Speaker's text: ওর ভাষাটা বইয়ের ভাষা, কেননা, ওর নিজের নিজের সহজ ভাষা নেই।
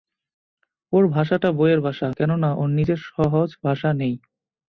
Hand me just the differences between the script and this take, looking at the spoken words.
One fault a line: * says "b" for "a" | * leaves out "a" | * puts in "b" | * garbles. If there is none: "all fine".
* leaves out "নিজের"